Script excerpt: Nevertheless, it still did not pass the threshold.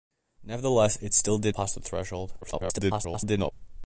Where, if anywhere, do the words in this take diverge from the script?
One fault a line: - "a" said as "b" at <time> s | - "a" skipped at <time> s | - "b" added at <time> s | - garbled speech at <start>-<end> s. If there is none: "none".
- "not" skipped at 1.6 s
- garbled speech at 2.4-3.5 s